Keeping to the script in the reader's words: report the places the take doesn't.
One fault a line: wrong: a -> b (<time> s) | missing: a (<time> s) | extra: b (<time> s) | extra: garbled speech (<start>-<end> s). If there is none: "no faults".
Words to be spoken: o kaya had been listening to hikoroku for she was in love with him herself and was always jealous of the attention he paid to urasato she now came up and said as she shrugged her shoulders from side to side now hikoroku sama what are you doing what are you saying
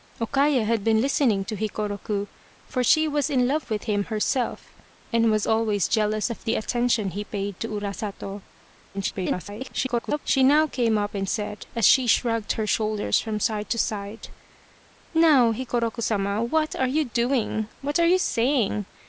extra: garbled speech (8.9-10.2 s)